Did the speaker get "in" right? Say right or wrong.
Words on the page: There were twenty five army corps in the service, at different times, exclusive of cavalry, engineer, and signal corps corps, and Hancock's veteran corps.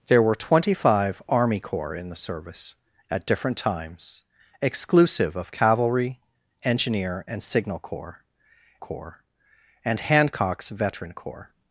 right